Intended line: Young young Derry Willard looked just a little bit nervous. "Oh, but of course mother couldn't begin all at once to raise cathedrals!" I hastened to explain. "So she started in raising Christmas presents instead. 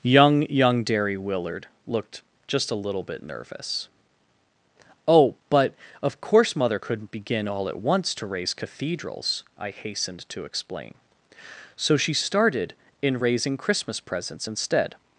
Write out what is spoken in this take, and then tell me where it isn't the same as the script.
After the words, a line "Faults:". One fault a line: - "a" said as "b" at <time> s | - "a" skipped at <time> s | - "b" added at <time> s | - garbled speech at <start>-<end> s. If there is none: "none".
Young young Derry Willard looked just a little bit nervous. "Oh, but of course mother couldn't begin all at once to raise cathedrals!" I hastened to explain. "So she started in raising Christmas presents instead.
Faults:
none